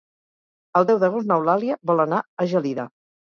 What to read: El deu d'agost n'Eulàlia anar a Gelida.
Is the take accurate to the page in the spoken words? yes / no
no